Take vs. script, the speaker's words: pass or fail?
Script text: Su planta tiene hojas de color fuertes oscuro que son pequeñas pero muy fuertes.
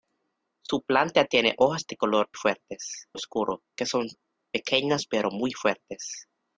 pass